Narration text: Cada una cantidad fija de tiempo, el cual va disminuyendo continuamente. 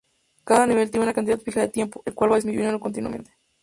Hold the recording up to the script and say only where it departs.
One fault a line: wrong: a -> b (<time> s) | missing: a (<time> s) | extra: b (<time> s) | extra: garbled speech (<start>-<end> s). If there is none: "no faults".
extra: nivel tiene (0.7 s)